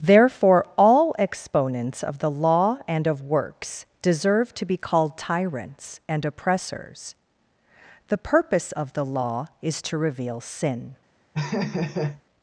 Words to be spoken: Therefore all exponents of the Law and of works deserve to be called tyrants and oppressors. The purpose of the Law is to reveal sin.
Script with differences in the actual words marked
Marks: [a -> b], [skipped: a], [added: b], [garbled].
Therefore all exponents of the Law and of works deserve to be called tyrants and oppressors. The purpose of the Law is to reveal sin.